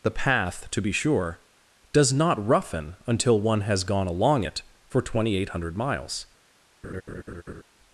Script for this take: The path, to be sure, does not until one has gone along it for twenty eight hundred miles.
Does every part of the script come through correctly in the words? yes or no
no